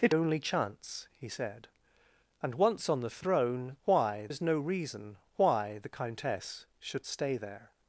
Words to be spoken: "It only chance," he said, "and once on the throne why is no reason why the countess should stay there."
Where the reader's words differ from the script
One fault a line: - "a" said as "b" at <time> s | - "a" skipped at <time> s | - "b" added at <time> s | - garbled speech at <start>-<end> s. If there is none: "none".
none